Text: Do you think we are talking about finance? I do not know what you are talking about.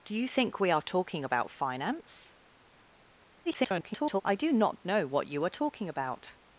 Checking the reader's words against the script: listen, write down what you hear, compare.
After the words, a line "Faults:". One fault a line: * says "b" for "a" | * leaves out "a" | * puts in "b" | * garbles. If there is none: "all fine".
Do you think we are talking about finance? [garbled] I do not know what you are talking about.
Faults:
* garbles